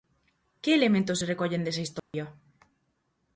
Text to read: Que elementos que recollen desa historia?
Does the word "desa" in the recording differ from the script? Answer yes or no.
no